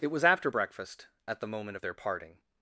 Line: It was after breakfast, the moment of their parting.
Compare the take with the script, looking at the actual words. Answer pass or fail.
fail